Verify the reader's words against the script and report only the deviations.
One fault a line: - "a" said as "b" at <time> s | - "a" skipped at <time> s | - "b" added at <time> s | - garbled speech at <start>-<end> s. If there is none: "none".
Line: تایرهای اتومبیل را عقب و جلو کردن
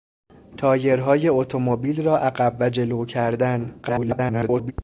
- garbled speech at 3.8-4.7 s